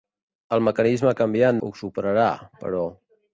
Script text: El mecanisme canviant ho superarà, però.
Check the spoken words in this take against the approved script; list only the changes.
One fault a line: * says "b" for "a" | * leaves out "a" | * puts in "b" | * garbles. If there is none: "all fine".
all fine